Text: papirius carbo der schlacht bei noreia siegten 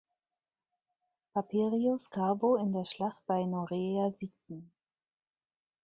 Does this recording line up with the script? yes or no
no